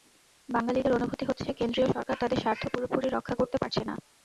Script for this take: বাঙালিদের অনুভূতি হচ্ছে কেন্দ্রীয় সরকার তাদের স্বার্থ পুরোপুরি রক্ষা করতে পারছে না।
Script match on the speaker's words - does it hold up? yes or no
yes